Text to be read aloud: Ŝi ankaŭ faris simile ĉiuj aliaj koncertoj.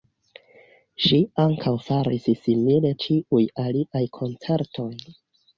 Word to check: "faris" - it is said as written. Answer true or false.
true